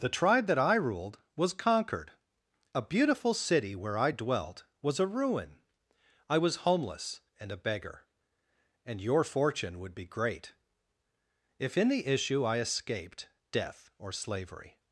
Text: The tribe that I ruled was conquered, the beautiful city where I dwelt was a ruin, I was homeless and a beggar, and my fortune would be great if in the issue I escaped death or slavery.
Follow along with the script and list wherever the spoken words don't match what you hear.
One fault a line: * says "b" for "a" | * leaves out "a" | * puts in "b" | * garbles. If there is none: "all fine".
* says "a" for "the"
* says "your" for "my"